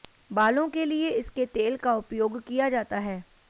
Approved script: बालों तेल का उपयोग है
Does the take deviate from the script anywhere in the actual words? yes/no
yes